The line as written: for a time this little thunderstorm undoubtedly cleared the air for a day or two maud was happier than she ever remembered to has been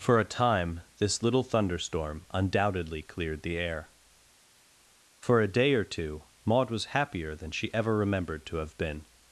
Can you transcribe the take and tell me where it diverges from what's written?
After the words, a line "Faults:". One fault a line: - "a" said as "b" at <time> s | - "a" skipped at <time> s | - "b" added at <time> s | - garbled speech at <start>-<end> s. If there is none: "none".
for a time this little thunderstorm undoubtedly cleared the air for a day or two maud was happier than she ever remembered to have been
Faults:
- "has" said as "have" at 8.6 s